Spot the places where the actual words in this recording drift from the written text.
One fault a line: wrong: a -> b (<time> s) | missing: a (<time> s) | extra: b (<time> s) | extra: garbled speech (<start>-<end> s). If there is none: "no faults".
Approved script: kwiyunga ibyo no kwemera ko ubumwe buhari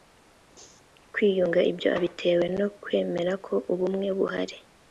extra: abitewe (2.0 s)